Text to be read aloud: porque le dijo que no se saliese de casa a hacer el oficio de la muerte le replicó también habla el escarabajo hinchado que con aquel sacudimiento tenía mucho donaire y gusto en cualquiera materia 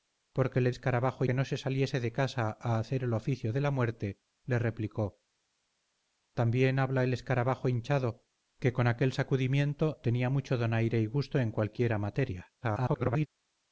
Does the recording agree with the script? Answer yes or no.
no